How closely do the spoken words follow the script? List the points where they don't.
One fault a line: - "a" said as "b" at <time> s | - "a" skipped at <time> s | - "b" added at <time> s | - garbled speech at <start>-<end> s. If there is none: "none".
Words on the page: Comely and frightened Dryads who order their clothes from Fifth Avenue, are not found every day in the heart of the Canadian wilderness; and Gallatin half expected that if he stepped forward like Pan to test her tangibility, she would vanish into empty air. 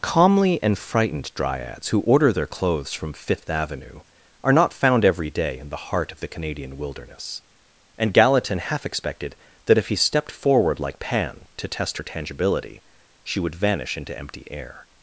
- "Comely" said as "Calmly" at 0.0 s